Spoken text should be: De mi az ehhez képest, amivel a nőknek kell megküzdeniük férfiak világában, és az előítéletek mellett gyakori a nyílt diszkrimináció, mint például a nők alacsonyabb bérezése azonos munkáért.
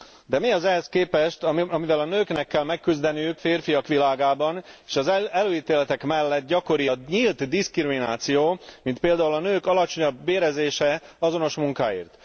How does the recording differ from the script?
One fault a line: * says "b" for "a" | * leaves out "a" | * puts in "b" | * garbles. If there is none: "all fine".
all fine